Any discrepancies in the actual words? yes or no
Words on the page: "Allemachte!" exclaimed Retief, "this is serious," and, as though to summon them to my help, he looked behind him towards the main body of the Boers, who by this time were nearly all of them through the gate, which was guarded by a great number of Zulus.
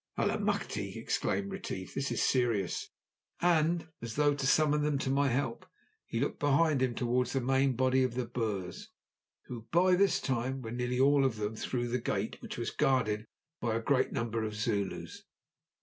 no